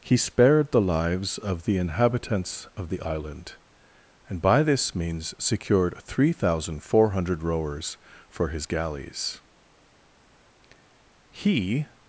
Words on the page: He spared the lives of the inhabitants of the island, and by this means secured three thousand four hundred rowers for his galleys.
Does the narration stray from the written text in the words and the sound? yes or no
yes